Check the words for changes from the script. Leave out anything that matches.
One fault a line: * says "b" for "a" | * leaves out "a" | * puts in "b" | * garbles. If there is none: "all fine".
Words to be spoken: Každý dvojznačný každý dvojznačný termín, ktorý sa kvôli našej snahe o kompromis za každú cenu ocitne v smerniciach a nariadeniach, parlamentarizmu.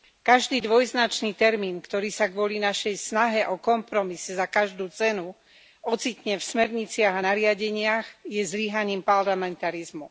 * leaves out "každý dvojznačný"
* puts in "je zlyhaním"